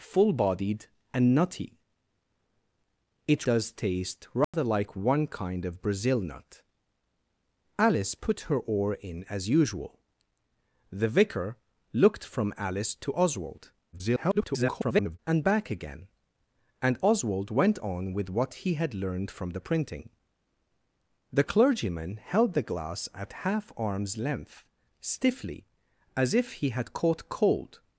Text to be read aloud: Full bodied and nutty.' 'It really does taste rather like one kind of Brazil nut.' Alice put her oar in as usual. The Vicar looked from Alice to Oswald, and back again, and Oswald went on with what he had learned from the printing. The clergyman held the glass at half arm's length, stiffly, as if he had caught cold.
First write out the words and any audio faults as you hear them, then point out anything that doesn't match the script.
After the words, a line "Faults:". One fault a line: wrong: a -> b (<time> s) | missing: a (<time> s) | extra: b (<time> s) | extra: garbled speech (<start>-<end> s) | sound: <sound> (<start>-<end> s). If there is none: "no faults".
Full bodied and nutty.' 'It does taste rather like one kind of Brazil nut.' Alice put her oar in as usual. The Vicar looked from Alice to Oswald, [garbled] and back again, and Oswald went on with what he had learned from the printing. The clergyman held the glass at half arm's length, stiffly, as if he had caught cold.
Faults:
missing: really (3.5 s)
sound: dropout (4.4-4.5 s)
extra: garbled speech (13.9-15.2 s)